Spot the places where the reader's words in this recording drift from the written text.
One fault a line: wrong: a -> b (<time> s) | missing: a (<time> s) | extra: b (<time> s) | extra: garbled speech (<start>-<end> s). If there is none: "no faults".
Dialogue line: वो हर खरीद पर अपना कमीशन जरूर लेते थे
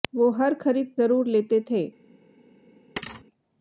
missing: पर अपना कमीशन (0.9 s)